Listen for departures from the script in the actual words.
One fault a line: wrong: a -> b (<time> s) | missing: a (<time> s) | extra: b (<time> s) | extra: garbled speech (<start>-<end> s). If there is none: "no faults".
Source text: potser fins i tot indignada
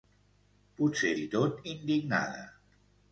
missing: fins (1.1 s)